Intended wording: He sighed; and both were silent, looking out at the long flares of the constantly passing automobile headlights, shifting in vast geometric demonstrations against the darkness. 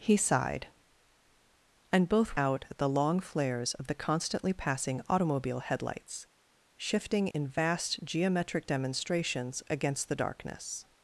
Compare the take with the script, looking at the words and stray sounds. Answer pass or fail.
fail